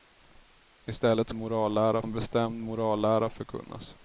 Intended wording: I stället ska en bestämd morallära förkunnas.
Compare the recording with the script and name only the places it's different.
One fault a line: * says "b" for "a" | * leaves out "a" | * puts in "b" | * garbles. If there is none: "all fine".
* says "morallära" for "ska"